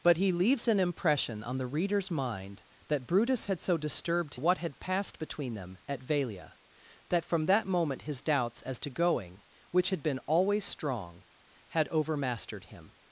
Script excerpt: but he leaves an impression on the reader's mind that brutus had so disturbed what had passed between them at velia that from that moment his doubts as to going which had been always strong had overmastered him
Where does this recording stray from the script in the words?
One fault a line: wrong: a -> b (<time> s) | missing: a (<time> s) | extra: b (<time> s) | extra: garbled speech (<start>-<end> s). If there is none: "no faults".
no faults